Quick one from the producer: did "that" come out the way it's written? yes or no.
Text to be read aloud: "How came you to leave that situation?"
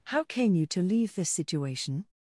no